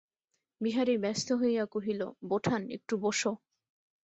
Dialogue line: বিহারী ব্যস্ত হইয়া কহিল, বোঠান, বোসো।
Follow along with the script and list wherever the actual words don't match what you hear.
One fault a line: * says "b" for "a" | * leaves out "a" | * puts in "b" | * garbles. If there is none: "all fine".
* puts in "একটু"